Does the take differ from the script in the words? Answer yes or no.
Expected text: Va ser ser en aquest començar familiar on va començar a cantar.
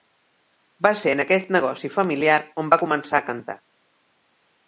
yes